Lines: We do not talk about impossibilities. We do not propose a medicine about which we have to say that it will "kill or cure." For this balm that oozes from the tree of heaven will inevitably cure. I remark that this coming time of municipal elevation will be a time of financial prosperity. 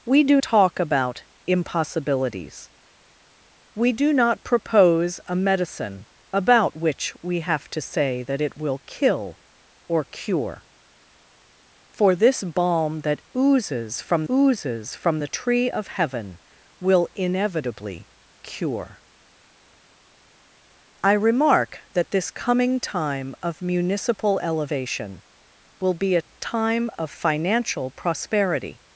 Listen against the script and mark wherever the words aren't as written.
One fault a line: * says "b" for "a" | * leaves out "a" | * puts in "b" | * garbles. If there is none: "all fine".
* leaves out "not"
* puts in "oozes from"